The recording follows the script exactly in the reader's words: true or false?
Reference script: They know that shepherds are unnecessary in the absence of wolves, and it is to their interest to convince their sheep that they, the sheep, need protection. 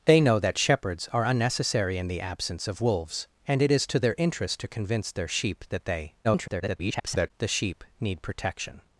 false